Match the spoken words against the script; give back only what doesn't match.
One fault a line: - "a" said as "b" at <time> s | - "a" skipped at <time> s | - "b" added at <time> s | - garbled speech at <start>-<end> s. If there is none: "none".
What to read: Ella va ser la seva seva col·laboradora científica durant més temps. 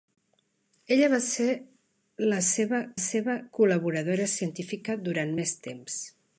none